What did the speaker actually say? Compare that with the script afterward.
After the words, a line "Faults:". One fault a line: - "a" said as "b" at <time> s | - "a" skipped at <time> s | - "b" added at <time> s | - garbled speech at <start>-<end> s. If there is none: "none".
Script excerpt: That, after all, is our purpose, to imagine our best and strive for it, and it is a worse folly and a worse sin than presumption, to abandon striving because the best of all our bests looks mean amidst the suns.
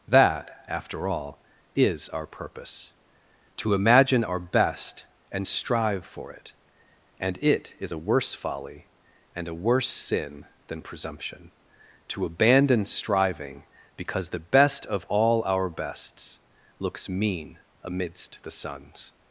That, after all, is our purpose, to imagine our best and strive for it, and it is a worse folly and a worse sin than presumption, to abandon striving because the best of all our bests looks mean amidst the suns.
Faults:
none